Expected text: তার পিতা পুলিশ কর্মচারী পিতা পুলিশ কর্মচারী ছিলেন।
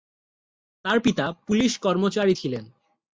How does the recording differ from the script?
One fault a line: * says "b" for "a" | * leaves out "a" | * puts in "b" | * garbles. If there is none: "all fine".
* leaves out "পিতা পুলিশ কর্মচারী"